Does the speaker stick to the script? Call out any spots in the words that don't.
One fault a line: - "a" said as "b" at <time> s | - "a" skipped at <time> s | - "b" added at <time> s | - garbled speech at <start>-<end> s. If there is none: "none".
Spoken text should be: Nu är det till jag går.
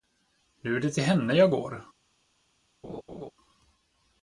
- "henne" added at 1.0 s